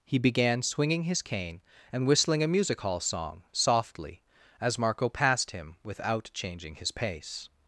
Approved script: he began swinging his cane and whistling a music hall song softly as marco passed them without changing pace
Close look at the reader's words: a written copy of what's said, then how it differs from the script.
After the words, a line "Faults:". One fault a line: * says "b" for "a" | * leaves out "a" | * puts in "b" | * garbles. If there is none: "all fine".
he began swinging his cane and whistling a music hall song softly as marco passed him without changing his pace
Faults:
* says "him" for "them"
* puts in "his"